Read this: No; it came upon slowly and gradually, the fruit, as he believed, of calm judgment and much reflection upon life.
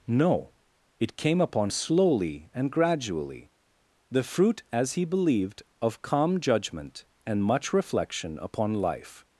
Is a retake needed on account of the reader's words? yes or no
no